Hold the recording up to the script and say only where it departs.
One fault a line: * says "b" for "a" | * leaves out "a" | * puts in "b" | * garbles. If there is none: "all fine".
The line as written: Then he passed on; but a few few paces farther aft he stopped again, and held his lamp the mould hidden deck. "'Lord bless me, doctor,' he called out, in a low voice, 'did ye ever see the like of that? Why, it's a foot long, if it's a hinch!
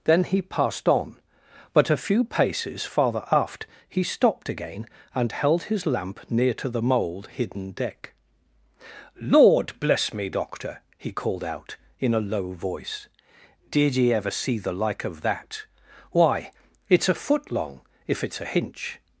* leaves out "few"
* puts in "near to"